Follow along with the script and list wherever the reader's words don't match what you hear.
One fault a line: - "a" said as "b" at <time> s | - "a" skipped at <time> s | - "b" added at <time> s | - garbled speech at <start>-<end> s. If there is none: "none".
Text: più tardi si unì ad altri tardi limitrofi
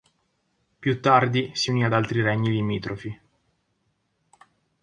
- "tardi" said as "regni" at 2.2 s